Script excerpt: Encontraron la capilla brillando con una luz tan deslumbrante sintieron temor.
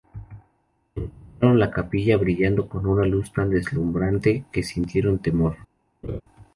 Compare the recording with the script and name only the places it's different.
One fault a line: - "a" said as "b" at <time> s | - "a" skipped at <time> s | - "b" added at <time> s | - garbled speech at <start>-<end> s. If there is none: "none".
- "que" added at 4.5 s